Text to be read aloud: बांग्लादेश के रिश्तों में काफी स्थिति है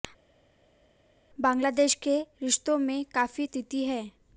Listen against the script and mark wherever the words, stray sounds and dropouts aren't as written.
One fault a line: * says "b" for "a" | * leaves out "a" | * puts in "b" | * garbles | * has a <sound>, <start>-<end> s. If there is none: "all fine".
all fine